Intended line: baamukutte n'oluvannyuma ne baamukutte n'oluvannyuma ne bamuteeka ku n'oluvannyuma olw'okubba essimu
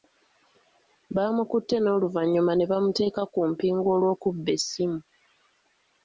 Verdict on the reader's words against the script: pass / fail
fail